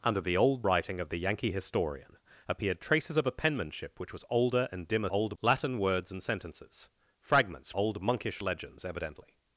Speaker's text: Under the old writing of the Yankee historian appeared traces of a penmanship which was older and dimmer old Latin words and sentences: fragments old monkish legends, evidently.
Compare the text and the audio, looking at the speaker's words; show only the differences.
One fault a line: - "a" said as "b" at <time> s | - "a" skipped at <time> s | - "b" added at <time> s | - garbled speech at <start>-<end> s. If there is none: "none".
none